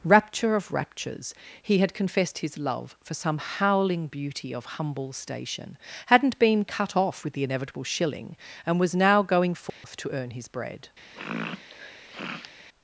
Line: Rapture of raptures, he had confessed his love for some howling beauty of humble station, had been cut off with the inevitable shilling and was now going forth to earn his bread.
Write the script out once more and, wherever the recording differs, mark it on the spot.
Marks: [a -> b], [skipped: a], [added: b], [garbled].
Rapture of raptures, he had confessed his love for some howling beauty of humble station, [had -> hadn't] been cut off with the inevitable shilling and was now going forth to earn his bread.